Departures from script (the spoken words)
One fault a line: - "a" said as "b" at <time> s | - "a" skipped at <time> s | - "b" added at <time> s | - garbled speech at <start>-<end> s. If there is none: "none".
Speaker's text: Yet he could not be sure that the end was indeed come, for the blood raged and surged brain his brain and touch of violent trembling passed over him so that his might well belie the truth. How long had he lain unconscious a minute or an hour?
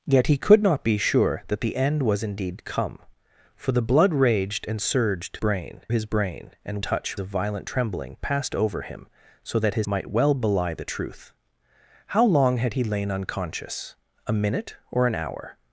none